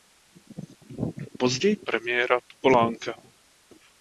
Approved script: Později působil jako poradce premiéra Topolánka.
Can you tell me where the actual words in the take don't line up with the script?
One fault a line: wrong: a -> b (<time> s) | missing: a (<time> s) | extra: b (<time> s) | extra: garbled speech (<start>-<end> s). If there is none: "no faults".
missing: působil jako poradce (1.8 s)